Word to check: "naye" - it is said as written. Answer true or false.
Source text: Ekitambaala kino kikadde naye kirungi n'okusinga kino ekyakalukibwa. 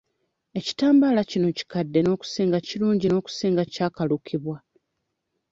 false